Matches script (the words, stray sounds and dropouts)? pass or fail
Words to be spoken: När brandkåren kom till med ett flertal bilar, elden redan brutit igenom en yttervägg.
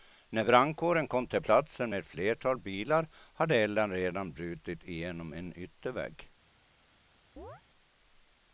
fail